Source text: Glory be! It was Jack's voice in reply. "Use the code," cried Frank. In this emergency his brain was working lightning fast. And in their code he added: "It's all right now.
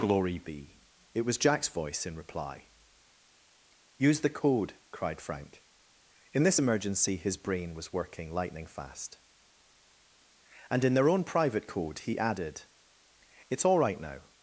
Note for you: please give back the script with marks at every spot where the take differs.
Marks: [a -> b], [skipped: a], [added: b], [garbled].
Glory be! It was Jack's voice in reply. "Use the code," cried Frank. In this emergency his brain was working lightning fast. And in their [added: own private] code he added: "It's all right now.